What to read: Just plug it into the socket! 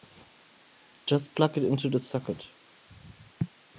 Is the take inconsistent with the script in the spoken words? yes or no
no